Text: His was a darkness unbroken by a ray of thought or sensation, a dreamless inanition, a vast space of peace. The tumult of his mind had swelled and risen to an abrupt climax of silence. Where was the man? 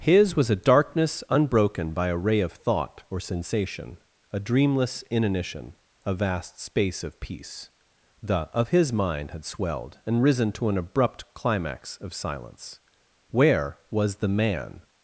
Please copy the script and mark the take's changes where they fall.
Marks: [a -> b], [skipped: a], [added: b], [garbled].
His was a darkness unbroken by a ray of thought or sensation, a dreamless inanition, a vast space of peace. The [skipped: tumult] of his mind had swelled and risen to an abrupt climax of silence. Where was the man?